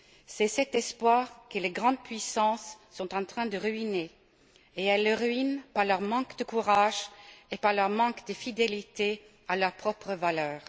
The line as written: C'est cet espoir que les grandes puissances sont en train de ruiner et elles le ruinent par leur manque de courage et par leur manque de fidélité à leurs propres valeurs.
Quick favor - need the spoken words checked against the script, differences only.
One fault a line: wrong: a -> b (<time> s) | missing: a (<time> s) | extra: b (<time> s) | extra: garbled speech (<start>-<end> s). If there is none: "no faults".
no faults